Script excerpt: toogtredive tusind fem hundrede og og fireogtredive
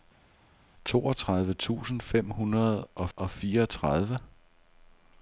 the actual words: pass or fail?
pass